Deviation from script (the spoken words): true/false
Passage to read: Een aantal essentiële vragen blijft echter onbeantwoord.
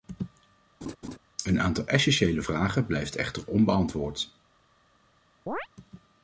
false